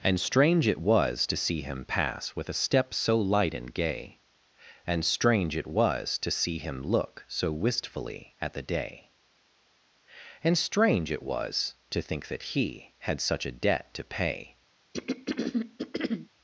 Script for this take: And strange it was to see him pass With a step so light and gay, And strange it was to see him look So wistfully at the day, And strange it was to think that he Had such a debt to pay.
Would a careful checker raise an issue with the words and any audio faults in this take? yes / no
yes